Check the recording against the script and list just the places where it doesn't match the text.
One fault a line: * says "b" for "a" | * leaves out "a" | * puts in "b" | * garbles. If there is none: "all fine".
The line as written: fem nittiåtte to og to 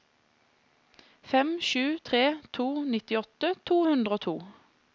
* puts in "sju tre to"
* puts in "hundre"